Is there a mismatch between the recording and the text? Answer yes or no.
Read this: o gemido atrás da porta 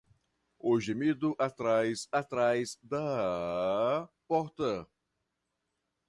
yes